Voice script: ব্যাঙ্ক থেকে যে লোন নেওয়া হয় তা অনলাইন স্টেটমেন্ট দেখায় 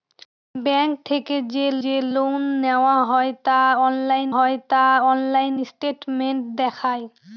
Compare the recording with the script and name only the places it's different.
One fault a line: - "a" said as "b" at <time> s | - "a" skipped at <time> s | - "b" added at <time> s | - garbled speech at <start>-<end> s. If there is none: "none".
- "যে" added at 1.8 s
- "হয় তা অনলাইন" added at 4.3 s